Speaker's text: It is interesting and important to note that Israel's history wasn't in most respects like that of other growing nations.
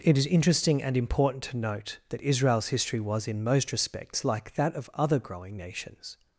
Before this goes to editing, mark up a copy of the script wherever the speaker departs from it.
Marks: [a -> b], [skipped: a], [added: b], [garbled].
It is interesting and important to note that Israel's history [wasn't -> was] in most respects like that of other growing nations.